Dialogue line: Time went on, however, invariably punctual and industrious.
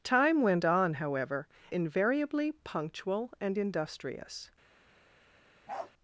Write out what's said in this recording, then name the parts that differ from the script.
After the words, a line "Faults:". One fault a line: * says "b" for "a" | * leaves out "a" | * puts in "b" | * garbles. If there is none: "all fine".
Time went on, however, invariably punctual and industrious.
Faults:
all fine